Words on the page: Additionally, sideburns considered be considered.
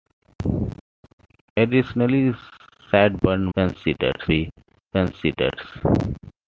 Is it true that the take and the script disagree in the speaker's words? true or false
false